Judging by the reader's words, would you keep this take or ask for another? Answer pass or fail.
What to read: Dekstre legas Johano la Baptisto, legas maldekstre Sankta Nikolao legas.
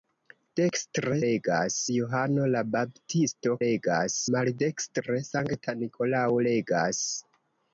pass